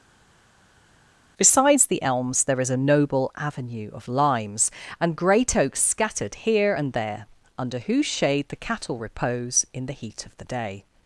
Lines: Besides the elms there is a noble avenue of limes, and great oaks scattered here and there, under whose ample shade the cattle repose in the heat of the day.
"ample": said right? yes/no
no